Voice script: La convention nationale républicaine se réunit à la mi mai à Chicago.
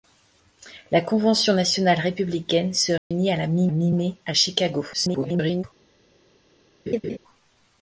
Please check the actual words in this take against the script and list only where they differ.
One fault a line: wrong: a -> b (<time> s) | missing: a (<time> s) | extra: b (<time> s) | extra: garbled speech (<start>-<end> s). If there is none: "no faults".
extra: mi (3.7 s)
extra: garbled speech (4.9-5.6 s)